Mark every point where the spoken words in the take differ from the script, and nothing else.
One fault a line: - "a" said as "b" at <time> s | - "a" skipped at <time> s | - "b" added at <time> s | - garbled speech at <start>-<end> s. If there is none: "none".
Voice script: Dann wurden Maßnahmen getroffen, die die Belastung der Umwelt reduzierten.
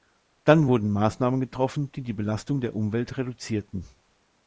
none